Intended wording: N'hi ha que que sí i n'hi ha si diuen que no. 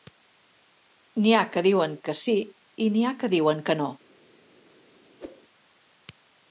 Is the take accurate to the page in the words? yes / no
no